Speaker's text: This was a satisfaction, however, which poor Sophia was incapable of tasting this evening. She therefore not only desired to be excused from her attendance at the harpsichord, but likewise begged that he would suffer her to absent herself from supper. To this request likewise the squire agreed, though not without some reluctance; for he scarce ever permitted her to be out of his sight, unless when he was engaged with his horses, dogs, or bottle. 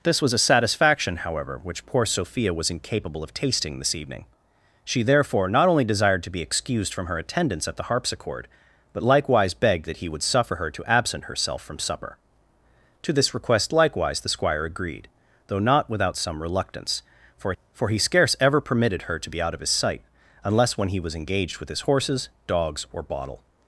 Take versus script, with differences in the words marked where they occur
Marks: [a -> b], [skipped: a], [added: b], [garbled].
This was a satisfaction, however, which poor Sophia was incapable of tasting this evening. She therefore not only desired to be excused from her attendance at the harpsichord, but likewise begged that he would suffer her to absent herself from supper. To this request likewise the squire agreed, though not without some reluctance; for [added: for] he scarce ever permitted her to be out of his sight, unless when he was engaged with his horses, dogs, or bottle.